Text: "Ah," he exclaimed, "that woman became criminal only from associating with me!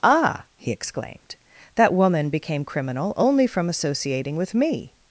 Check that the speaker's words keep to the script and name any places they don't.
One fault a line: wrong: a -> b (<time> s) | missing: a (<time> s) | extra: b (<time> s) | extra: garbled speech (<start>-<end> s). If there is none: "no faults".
no faults